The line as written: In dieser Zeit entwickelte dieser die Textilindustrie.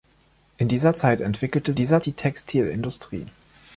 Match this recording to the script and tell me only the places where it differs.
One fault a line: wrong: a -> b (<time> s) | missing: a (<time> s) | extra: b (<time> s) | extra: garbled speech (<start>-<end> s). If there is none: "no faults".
no faults